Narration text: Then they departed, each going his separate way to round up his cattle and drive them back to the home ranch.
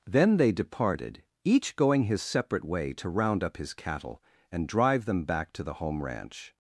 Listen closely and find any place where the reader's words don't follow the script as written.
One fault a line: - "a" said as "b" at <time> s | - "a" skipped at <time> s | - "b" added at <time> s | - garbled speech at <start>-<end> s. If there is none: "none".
none